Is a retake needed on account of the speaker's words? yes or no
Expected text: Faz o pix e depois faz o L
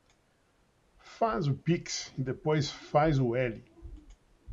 no